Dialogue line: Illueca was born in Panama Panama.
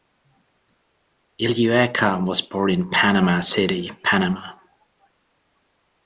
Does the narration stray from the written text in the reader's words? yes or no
yes